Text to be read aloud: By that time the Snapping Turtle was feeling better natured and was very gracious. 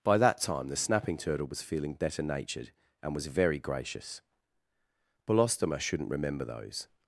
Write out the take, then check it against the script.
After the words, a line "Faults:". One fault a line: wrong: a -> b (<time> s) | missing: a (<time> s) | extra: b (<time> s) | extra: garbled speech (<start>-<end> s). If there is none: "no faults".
By that time the Snapping Turtle was feeling better natured and was very gracious. "Belostoma shouldn't remember those
Faults:
extra: Belostoma shouldn't remember those (5.3 s)